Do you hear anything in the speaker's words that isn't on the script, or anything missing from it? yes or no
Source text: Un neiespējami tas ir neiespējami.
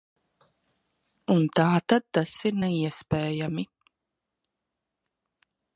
yes